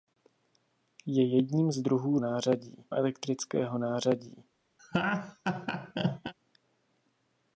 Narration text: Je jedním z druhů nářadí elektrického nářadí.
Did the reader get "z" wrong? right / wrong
right